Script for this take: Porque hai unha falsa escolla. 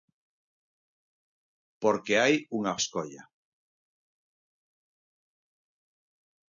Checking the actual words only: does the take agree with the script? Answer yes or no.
no